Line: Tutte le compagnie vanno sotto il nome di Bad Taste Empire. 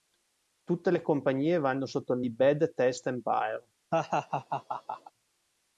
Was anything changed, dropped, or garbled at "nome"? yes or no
yes